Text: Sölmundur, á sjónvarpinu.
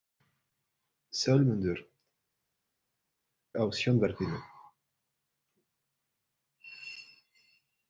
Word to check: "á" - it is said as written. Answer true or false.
true